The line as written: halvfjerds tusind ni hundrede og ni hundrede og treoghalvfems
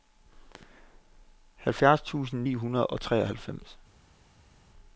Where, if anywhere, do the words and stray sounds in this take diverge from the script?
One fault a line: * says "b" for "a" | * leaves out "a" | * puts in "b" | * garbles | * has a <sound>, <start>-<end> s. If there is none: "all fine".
* leaves out "ni hundrede og"